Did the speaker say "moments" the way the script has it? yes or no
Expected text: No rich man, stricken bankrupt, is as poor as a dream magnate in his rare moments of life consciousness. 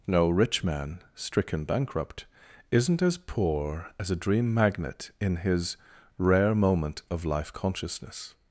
no